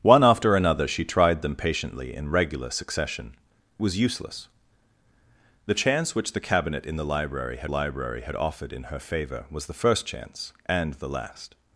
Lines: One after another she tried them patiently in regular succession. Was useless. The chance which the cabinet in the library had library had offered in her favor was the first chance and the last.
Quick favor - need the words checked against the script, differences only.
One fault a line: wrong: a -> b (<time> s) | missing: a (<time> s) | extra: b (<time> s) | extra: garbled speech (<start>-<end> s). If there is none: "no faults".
no faults